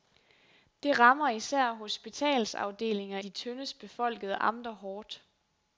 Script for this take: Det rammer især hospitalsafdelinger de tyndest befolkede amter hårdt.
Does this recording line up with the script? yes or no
yes